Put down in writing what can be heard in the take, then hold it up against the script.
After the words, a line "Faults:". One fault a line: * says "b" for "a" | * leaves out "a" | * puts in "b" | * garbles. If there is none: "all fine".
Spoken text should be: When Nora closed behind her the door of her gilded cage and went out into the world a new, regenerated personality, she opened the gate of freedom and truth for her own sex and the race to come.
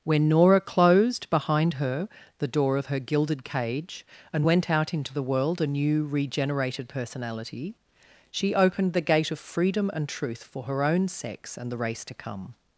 When Nora closed behind her the door of her gilded cage and went out into the world a new, regenerated personality, she opened the gate of freedom and truth for her own sex and the race to come.
Faults:
all fine